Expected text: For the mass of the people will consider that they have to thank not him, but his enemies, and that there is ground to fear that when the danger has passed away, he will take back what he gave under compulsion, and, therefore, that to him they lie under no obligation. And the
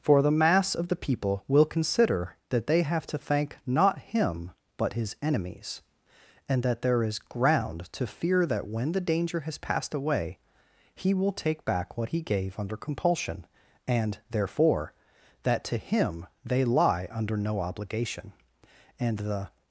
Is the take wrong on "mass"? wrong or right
right